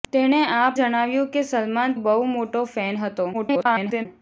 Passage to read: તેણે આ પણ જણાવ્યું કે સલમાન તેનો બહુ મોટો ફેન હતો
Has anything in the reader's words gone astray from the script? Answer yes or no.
yes